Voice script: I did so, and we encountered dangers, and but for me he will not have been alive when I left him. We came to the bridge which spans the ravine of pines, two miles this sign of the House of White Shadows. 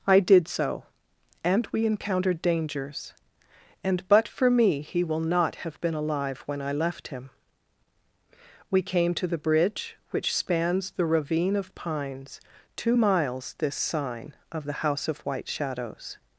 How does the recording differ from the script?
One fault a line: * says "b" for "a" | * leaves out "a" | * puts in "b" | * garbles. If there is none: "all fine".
all fine